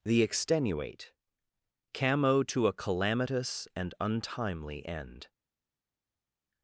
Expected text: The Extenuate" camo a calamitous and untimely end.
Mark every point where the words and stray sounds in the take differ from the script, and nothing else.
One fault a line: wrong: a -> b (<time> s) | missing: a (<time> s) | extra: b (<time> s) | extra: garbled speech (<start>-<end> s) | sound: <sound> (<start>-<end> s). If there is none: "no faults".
extra: to (2.4 s)